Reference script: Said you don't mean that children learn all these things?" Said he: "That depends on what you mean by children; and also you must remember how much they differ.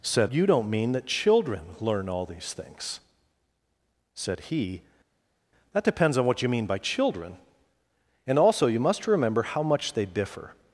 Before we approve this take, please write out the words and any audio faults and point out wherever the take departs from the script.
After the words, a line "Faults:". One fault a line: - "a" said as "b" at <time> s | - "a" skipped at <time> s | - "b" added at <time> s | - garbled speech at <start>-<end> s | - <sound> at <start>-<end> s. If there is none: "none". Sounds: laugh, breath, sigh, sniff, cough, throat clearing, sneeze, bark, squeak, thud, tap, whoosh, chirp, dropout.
Said you don't mean that children learn all these things?" Said he: "That depends on what you mean by children; and also you must remember how much they differ.
Faults:
none